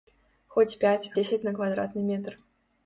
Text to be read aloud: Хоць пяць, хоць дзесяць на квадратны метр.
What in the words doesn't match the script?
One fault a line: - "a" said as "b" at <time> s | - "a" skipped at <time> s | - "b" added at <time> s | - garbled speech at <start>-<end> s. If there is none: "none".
- "хоць" skipped at 1.1 s